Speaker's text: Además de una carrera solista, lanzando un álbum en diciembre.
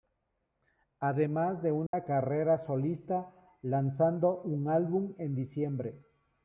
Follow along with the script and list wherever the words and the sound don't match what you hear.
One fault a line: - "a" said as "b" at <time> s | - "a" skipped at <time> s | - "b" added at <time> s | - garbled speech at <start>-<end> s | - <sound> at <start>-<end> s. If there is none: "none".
- dropout at 1.9-1.9 s